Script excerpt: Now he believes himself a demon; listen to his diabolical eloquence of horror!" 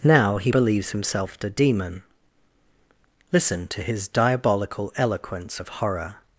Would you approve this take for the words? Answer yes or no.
yes